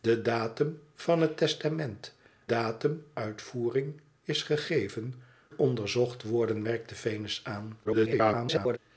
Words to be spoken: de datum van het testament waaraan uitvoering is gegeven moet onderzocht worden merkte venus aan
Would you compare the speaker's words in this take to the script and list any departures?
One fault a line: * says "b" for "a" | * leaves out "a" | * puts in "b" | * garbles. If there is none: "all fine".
* says "datum" for "waaraan"
* leaves out "moet"
* garbles